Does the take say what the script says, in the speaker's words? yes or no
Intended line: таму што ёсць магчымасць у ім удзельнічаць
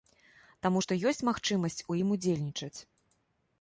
yes